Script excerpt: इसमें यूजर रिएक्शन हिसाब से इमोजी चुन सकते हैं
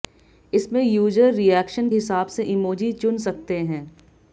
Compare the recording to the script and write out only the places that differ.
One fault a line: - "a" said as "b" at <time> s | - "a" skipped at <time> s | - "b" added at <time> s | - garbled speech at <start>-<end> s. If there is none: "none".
none